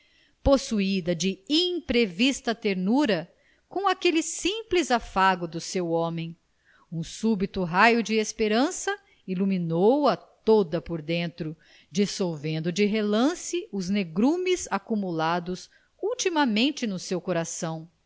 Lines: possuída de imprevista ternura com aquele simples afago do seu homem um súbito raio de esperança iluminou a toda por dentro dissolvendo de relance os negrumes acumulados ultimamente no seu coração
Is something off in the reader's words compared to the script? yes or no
no